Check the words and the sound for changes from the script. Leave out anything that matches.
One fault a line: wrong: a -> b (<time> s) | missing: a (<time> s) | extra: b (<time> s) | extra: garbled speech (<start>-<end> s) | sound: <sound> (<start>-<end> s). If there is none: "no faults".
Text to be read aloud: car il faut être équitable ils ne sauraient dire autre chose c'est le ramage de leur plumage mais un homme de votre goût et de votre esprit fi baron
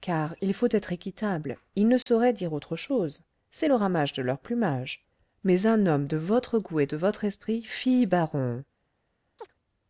sound: dropout (2.0-2.1 s)
sound: chirp (9.4-9.5 s)